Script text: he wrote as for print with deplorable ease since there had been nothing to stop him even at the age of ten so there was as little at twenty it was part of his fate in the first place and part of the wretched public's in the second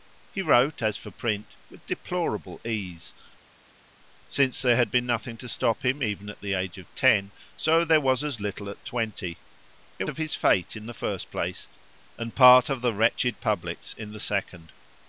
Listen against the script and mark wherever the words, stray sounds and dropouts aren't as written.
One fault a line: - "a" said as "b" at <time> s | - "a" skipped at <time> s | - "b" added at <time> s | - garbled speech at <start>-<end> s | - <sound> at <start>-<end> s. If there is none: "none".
- "was part" skipped at 10.0 s